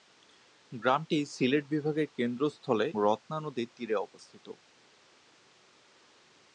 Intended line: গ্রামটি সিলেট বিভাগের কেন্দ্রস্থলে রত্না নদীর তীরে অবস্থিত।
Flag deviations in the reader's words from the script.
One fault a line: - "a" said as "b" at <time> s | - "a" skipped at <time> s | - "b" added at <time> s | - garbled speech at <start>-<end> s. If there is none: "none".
none